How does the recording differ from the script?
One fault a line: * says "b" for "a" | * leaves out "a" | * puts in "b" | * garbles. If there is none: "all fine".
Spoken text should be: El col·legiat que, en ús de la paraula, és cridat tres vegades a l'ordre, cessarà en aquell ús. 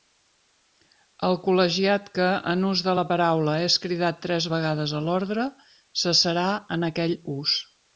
all fine